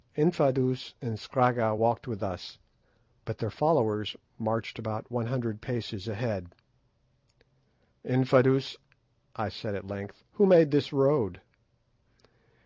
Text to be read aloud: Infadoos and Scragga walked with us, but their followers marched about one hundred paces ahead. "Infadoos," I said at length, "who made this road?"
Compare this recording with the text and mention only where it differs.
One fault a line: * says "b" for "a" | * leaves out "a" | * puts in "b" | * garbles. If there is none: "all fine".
all fine